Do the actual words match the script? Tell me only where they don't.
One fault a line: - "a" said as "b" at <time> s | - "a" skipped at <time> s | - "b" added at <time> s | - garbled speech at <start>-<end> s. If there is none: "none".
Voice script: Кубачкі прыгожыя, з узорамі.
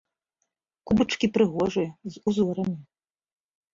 none